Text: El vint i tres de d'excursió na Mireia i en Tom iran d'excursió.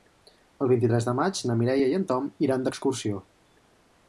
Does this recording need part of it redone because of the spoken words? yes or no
yes